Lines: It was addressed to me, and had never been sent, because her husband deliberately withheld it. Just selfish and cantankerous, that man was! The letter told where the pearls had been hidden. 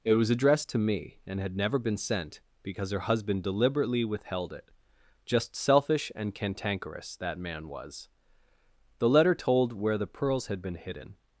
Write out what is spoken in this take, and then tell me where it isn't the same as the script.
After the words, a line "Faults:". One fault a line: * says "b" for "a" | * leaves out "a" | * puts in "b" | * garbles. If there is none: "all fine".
It was addressed to me, and had never been sent, because her husband deliberately withheld it. Just selfish and cantankerous, that man was! The letter told where the pearls had been hidden.
Faults:
all fine